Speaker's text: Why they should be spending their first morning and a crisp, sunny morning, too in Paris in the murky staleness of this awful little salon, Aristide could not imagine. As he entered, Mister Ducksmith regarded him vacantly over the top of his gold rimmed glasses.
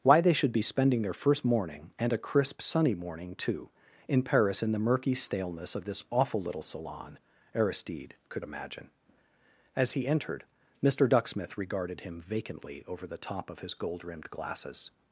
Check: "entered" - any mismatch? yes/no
no